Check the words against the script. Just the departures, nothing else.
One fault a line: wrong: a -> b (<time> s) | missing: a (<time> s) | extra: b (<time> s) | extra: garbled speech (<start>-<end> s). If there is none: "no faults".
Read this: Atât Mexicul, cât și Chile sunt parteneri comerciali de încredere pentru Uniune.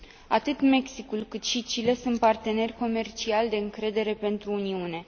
no faults